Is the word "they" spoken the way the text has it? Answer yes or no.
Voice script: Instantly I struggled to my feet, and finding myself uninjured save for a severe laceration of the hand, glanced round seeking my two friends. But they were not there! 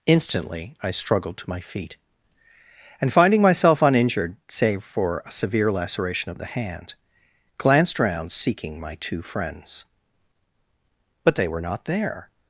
yes